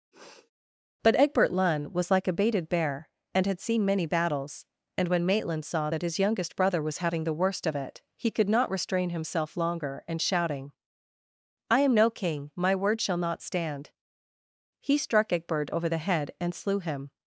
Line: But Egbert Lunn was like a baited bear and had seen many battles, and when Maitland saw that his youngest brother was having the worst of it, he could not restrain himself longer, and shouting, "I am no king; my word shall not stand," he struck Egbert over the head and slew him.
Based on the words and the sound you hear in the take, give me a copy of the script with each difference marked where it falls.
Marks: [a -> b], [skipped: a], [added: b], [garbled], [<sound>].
[sniff] But Egbert Lunn was like a baited bear and had seen many battles, and when Maitland saw that his youngest brother was having the worst of it, he could not restrain himself longer, and shouting, "I am no king; my word shall not stand," he struck Egbert over the head and slew him.